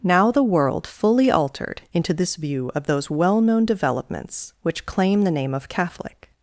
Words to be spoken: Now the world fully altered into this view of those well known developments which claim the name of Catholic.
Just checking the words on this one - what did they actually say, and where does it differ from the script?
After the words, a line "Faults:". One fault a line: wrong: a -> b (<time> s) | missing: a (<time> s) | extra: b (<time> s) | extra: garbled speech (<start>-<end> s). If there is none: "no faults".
Now the world fully altered into this view of those well known developments which claim the name of Catholic.
Faults:
no faults